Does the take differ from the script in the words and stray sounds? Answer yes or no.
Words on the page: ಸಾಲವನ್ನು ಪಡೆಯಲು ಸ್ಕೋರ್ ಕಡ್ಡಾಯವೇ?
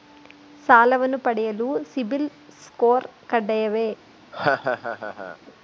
yes